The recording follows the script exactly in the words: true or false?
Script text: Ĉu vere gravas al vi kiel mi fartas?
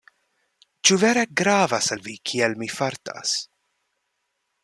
true